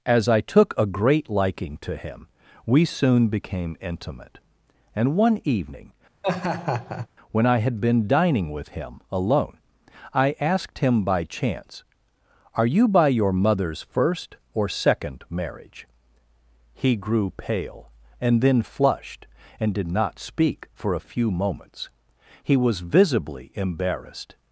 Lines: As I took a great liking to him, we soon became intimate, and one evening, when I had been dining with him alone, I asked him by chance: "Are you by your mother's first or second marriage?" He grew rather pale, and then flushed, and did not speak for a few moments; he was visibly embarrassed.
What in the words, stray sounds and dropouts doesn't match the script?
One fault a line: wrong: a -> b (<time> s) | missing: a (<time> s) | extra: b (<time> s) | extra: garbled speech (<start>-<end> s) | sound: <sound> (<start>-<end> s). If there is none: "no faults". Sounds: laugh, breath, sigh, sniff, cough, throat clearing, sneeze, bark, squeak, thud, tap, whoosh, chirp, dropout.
sound: laugh (6.2-7.1 s)
missing: rather (17.3 s)